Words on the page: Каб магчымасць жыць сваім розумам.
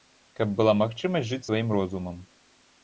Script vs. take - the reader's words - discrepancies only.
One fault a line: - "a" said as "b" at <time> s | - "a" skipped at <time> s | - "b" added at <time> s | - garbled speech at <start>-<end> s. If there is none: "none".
- "была" added at 0.6 s